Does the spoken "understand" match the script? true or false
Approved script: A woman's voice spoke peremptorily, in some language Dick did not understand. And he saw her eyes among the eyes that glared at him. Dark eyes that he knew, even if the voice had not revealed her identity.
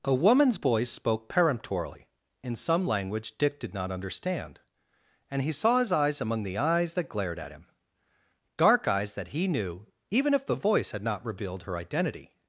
true